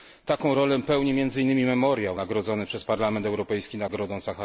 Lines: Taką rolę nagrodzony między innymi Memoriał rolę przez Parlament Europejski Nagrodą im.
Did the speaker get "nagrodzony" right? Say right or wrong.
wrong